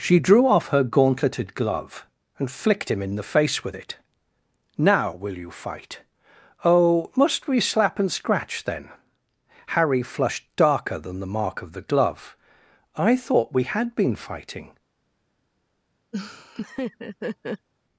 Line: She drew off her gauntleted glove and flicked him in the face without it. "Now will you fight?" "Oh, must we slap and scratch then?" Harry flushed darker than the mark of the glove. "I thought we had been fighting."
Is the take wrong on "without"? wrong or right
wrong